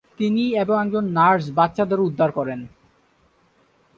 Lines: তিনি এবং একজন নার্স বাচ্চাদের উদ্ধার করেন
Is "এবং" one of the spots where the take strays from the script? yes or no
no